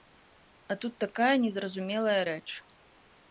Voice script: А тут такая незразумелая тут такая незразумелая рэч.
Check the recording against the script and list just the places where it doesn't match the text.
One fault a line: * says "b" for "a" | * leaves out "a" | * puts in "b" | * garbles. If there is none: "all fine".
* leaves out "тут такая незразумелая"